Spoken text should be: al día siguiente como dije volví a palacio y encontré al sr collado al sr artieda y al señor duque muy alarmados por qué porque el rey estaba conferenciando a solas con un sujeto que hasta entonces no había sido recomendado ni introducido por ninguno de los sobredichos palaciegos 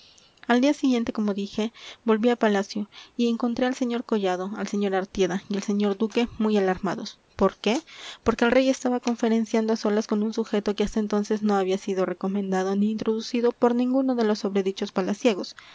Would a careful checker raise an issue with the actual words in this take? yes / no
no